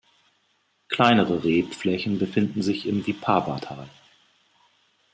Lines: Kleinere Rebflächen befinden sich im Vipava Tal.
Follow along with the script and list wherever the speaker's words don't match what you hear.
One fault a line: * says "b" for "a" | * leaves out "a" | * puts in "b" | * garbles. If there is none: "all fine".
all fine